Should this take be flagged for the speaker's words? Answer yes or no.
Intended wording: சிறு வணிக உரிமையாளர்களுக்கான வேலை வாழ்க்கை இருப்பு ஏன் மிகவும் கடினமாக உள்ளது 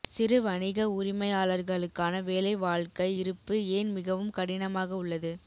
no